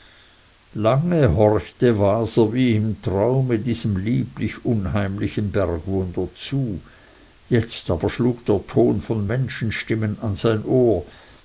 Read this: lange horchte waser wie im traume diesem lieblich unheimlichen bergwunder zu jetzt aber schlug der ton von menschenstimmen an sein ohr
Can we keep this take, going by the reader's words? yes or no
yes